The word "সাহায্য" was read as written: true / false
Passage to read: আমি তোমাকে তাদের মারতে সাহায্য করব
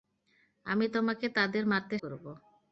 false